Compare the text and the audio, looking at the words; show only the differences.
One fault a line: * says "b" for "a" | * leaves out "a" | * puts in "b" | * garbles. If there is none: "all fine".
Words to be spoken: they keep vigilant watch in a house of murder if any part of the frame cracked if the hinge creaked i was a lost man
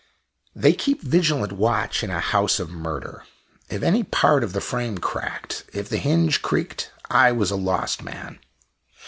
all fine